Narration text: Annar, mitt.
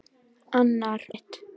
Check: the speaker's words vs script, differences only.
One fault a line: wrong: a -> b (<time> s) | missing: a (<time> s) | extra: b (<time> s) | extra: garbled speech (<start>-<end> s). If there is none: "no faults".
no faults